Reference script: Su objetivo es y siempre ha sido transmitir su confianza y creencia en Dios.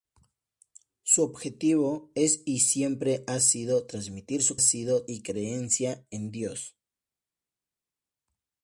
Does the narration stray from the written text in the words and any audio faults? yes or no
yes